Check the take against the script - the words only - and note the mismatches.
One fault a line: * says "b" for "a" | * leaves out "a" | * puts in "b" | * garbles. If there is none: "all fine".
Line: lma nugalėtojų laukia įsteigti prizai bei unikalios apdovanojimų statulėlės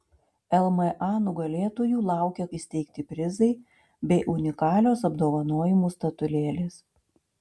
all fine